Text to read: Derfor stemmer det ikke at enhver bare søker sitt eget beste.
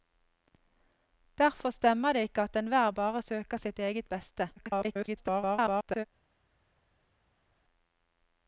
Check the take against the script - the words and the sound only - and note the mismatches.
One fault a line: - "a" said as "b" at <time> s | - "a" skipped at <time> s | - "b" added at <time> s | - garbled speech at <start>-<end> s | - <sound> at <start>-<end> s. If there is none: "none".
- garbled speech at 4.6-6.1 s